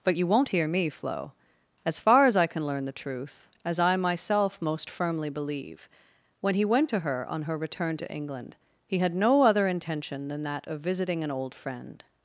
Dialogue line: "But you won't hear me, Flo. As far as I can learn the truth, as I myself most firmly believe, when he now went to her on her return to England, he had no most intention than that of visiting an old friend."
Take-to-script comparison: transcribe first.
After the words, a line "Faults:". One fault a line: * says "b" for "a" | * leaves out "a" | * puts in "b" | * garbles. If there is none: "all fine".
"But you won't hear me, Flo. As far as I can learn the truth, as I myself most firmly believe, when he went to her on her return to England, he had no other intention than that of visiting an old friend."
Faults:
* leaves out "now"
* says "other" for "most"